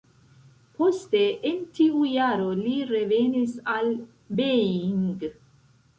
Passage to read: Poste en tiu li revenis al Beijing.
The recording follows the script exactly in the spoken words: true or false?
false